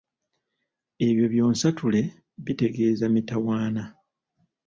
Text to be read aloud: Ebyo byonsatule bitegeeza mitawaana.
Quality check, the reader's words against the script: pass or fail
pass